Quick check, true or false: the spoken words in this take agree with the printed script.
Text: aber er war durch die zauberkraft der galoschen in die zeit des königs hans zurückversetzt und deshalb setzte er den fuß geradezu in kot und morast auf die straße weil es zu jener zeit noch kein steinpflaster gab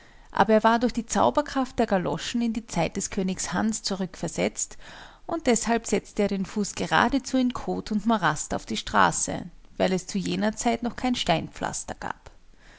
true